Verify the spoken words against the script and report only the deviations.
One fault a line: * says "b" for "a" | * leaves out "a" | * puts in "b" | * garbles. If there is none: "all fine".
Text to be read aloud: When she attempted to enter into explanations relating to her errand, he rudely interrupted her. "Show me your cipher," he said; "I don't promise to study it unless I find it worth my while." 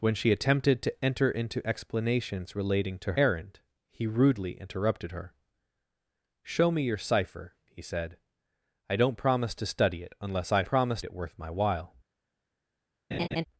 * leaves out "her"
* says "promise" for "find"